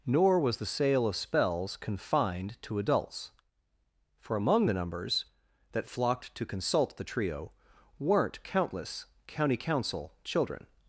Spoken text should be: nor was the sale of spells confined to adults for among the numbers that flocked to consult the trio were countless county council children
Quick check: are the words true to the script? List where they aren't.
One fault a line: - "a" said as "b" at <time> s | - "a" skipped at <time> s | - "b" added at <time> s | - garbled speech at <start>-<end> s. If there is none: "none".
- "were" said as "weren't" at 8.0 s